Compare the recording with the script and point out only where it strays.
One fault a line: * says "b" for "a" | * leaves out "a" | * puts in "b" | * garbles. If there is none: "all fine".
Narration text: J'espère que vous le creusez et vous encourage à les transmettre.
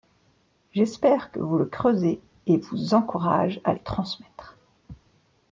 all fine